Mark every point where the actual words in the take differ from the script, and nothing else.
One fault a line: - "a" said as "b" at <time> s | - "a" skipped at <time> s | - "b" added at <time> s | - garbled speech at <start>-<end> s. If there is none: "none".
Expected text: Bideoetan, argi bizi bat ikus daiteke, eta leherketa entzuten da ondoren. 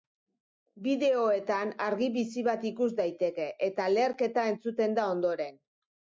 none